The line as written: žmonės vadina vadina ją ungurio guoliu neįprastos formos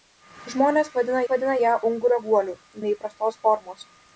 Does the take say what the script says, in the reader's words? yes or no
yes